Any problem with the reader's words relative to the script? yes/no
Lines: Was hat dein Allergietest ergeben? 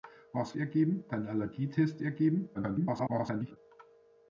yes